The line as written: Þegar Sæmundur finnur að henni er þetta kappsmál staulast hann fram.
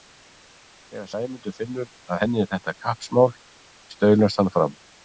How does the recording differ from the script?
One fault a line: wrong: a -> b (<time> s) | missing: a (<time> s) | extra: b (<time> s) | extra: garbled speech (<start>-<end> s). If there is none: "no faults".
no faults